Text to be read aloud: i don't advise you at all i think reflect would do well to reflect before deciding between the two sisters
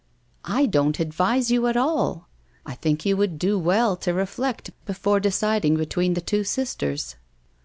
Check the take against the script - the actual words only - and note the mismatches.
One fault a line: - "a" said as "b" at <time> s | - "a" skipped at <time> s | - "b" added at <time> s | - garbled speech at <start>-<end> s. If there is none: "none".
- "reflect" said as "you" at 3.1 s